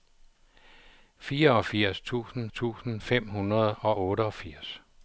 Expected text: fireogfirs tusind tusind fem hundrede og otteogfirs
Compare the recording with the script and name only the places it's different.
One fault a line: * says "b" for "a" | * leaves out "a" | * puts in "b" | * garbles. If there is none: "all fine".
all fine